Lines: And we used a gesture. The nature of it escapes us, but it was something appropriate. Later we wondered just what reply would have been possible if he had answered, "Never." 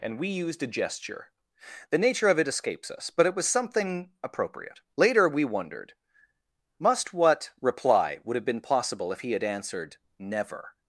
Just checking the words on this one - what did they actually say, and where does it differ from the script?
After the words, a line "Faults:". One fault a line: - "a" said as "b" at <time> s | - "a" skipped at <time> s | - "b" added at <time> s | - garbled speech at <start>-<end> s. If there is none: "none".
And we used a gesture. The nature of it escapes us, but it was something appropriate. Later we wondered must what reply would have been possible if he had answered, "Never."
Faults:
- "just" said as "must" at 6.8 s